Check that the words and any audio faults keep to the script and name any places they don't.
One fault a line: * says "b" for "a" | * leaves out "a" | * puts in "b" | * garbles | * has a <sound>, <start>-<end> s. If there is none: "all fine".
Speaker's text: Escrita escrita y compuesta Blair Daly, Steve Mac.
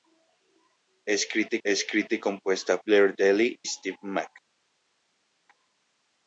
all fine